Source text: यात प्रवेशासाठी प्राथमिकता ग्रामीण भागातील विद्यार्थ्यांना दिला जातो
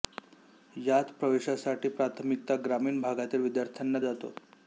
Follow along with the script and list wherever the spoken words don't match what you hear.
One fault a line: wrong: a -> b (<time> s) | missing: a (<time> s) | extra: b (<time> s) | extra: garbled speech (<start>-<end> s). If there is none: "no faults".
missing: दिला (4.0 s)